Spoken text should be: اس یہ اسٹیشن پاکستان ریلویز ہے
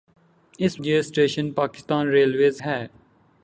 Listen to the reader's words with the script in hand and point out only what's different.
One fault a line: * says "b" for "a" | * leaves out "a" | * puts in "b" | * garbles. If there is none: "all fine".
all fine